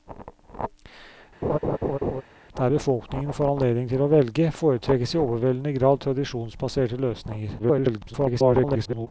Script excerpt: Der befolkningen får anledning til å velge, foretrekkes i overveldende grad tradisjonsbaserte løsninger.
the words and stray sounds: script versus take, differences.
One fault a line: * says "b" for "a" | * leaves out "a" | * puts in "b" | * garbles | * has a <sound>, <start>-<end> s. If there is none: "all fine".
* has a laugh, 1.4-2.2 s
* garbles